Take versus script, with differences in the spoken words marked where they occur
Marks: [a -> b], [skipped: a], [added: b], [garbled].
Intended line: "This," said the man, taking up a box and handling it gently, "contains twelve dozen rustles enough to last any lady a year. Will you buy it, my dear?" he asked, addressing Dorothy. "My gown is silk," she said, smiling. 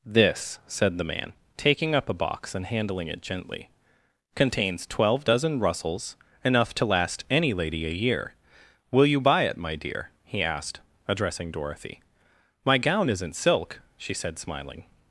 "This," said the man, taking up a box and handling it gently, "contains twelve dozen rustles enough to last any lady a year. Will you buy it, my dear?" he asked, addressing Dorothy. "My gown [is -> isn't] silk," she said, smiling.